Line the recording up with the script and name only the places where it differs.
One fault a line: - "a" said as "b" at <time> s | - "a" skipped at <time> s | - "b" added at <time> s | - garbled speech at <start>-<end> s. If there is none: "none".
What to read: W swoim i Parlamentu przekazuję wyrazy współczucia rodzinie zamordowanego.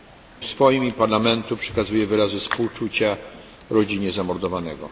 none